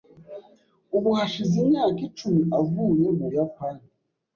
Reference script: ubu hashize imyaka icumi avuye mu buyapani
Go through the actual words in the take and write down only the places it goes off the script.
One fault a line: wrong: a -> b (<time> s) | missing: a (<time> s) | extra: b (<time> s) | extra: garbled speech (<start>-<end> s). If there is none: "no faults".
no faults